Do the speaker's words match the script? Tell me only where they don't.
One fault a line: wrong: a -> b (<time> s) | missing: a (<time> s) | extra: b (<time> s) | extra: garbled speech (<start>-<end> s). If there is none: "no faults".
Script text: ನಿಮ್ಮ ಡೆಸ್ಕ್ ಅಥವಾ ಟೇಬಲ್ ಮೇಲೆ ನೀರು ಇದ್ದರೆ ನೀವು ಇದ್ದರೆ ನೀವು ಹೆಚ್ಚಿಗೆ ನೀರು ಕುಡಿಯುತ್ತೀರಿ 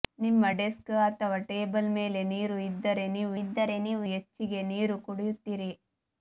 no faults